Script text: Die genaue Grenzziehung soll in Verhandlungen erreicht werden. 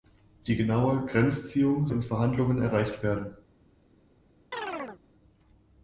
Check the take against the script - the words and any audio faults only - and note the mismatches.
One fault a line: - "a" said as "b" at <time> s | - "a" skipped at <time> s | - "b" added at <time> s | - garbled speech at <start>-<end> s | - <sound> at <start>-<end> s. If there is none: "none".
- "soll" skipped at 1.9 s
- chirp at 4.5-5.0 s